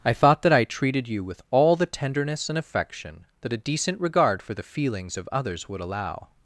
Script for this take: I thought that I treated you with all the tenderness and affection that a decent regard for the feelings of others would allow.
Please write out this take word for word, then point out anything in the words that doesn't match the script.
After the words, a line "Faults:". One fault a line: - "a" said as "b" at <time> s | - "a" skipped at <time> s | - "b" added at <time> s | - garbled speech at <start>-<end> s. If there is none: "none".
I thought that I treated you with all the tenderness and affection that a decent regard for the feelings of others would allow.
Faults:
none